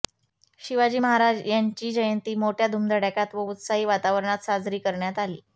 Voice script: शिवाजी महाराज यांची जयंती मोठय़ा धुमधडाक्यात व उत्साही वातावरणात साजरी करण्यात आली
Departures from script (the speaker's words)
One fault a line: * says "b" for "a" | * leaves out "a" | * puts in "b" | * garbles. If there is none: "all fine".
all fine